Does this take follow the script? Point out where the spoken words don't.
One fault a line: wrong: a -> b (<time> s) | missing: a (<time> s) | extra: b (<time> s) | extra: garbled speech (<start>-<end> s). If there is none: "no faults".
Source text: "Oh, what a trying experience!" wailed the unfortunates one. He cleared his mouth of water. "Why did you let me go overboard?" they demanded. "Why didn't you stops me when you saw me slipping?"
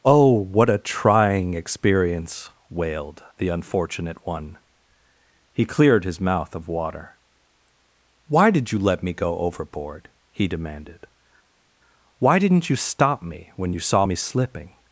wrong: unfortunates -> unfortunate (3.5 s)
wrong: they -> he (10.3 s)
wrong: stops -> stop (12.8 s)